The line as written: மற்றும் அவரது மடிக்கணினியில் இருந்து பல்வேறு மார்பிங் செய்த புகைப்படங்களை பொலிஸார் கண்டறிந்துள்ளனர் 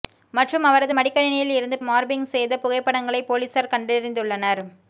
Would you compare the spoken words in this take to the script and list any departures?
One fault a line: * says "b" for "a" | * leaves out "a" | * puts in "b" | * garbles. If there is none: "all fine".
* leaves out "பல்வேறு"